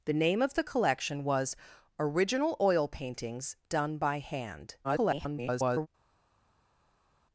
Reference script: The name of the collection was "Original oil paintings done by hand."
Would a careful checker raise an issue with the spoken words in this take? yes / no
yes